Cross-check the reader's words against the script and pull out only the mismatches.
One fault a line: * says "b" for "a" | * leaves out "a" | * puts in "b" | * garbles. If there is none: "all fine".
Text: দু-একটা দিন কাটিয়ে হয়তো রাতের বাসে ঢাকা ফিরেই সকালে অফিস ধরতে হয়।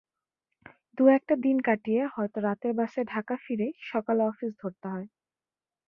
all fine